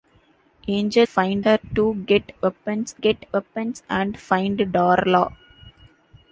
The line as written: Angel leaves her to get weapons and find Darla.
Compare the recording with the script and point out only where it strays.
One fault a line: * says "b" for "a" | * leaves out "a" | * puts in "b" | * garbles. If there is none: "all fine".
* says "find" for "leaves"
* puts in "get weapons"